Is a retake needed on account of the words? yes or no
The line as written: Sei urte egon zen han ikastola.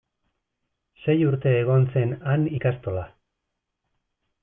no